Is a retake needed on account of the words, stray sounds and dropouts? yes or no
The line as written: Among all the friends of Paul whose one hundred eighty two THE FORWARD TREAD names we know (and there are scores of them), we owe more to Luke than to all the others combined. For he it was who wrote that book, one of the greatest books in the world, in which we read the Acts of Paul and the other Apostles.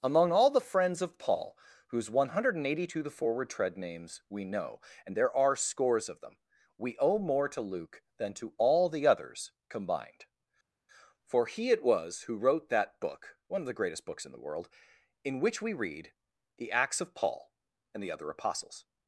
no